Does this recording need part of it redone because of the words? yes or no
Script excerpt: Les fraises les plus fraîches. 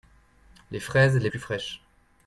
no